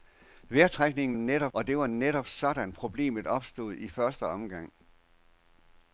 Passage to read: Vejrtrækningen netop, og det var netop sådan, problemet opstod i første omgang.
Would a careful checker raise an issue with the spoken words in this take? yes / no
no